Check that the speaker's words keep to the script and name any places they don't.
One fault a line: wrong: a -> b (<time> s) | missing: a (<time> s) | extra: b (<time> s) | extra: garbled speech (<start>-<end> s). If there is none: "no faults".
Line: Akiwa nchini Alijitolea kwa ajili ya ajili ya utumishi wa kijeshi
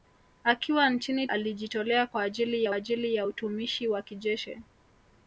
no faults